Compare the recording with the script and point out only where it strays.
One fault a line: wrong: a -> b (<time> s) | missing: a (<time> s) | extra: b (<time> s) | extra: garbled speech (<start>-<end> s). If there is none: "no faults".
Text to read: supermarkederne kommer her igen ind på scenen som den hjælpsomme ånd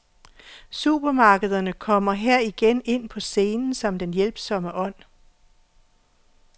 no faults